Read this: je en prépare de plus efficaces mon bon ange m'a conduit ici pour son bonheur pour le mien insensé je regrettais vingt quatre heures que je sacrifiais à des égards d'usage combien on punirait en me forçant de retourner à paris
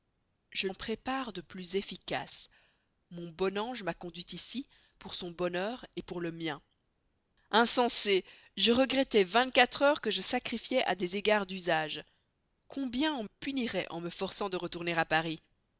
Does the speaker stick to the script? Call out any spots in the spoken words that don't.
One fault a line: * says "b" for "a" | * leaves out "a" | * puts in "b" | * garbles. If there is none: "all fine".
all fine